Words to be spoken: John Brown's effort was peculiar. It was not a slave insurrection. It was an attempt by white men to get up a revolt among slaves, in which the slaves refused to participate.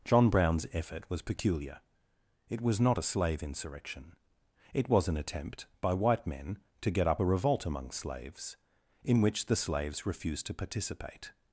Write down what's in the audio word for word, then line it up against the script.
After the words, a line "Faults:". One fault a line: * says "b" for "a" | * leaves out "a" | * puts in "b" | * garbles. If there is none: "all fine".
John Brown's effort was peculiar. It was not a slave insurrection. It was an attempt by white men to get up a revolt among slaves, in which the slaves refused to participate.
Faults:
all fine